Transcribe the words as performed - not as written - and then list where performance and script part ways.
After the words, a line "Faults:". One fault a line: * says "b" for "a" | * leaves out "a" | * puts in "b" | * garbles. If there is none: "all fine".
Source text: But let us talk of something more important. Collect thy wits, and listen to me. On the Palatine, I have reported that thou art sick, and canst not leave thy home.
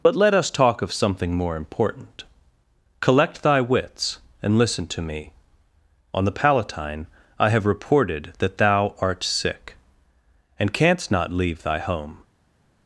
But let us talk of something more important. Collect thy wits, and listen to me. On the Palatine, I have reported that thou art sick, and canst not leave thy home.
Faults:
all fine